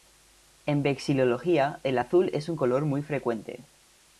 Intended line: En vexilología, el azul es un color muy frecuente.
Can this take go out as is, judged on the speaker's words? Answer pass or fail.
pass